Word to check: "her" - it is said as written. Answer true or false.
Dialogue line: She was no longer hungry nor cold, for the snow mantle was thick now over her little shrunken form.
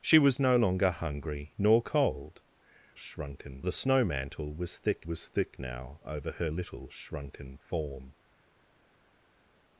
true